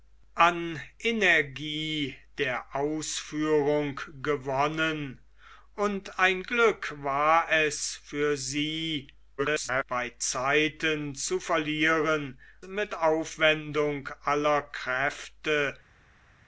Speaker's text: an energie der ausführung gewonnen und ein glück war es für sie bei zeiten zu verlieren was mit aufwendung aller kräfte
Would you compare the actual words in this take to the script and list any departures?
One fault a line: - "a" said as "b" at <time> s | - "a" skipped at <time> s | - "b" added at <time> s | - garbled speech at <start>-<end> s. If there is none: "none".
- garbled speech at 9.4-9.8 s
- "was" skipped at 12.4 s